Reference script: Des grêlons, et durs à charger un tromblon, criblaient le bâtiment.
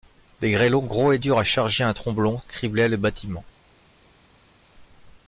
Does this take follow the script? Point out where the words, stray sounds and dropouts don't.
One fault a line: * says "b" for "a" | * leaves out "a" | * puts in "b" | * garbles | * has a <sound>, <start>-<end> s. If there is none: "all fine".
* puts in "gros"